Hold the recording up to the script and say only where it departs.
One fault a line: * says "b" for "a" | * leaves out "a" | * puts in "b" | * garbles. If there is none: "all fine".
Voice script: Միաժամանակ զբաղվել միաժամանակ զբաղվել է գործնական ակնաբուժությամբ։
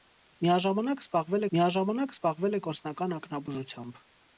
all fine